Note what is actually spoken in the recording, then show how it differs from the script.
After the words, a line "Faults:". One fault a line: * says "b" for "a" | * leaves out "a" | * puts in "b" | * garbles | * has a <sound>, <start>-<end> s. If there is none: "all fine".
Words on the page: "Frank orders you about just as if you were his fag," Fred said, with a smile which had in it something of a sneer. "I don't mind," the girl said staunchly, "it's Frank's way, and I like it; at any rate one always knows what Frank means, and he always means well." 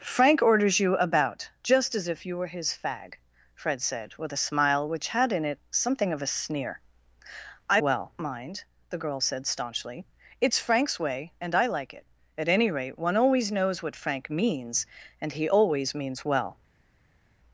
"Frank orders you about just as if you were his fag," Fred said, with a smile which had in it something of a sneer. "I well mind," the girl said staunchly, "it's Frank's way, and I like it; at any rate one always knows what Frank means, and he always means well."
Faults:
* says "well" for "don't"